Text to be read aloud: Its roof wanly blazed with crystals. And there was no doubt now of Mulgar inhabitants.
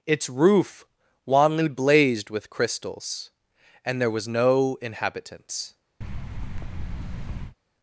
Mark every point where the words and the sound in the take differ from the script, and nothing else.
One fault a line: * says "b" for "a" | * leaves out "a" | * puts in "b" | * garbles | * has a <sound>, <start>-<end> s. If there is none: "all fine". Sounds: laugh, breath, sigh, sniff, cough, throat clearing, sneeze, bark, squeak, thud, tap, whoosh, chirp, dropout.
* leaves out "doubt now of Mulgar"
* has a thud, 6.0-7.6 s